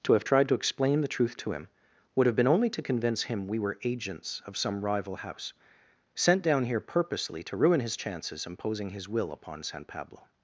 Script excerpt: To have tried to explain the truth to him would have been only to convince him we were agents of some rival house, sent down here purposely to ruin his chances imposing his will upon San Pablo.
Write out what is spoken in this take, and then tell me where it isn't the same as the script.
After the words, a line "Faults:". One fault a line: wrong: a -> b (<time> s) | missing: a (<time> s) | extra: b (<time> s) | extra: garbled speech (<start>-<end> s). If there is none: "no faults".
To have tried to explain the truth to him would have been only to convince him we were agents of some rival house, sent down here purposely to ruin his chances imposing his will upon San Pablo.
Faults:
no faults